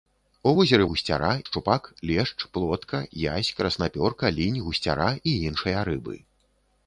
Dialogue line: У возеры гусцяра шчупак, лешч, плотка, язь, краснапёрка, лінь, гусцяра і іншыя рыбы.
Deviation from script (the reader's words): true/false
false